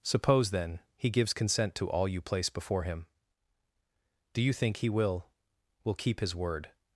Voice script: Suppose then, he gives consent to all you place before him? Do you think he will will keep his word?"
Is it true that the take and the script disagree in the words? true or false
false